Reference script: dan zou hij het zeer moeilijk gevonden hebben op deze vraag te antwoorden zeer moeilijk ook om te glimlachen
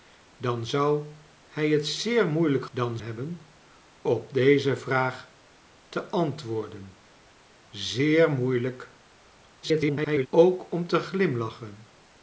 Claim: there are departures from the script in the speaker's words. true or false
true